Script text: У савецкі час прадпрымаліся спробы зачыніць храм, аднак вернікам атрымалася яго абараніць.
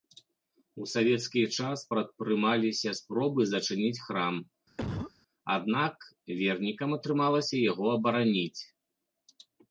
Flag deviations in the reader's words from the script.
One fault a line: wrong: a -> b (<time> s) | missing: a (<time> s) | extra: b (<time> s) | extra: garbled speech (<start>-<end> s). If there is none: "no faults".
no faults